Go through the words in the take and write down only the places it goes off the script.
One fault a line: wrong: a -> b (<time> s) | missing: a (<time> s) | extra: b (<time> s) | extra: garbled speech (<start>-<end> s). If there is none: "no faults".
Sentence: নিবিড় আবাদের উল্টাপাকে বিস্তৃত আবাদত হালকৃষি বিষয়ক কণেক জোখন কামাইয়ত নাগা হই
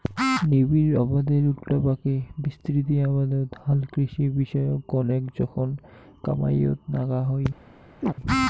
no faults